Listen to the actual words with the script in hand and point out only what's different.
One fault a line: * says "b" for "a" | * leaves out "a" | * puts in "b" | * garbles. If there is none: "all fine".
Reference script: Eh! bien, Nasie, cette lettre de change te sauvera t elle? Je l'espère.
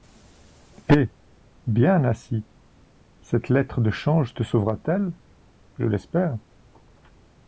all fine